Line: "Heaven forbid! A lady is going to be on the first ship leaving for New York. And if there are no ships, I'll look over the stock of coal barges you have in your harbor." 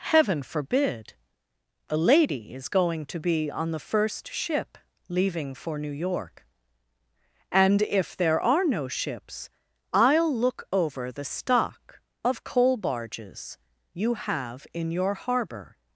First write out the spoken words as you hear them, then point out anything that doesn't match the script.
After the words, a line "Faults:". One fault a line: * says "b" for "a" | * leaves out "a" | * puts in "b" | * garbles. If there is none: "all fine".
"Heaven forbid! A lady is going to be on the first ship leaving for New York. And if there are no ships, I'll look over the stock of coal barges you have in your harbor."
Faults:
all fine